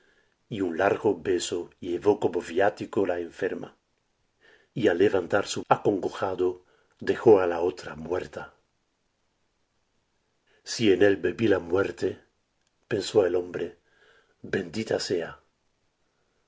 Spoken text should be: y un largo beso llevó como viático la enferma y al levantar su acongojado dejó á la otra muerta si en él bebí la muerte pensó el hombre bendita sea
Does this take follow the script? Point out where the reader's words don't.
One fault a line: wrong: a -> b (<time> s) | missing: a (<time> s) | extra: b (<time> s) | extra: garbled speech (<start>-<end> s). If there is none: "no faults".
no faults